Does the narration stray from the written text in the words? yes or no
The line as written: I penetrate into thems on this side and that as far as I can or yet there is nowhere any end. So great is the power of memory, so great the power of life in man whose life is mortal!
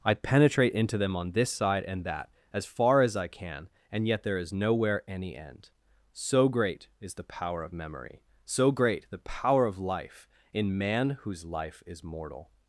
yes